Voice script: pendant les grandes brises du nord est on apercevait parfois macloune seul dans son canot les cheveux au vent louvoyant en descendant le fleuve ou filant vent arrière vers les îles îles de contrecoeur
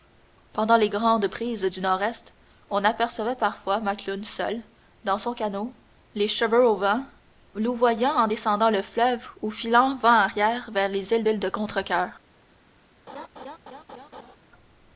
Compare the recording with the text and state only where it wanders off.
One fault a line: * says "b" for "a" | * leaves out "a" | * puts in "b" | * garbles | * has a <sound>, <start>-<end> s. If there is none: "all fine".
* has a laugh, 13.1-14.4 s